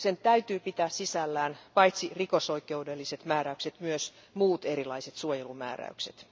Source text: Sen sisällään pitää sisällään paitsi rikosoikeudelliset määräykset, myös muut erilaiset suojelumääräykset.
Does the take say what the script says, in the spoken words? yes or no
no